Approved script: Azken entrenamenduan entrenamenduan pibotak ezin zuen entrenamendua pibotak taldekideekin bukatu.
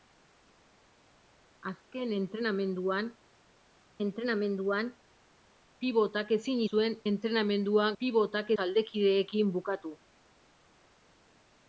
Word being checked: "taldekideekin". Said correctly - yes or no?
yes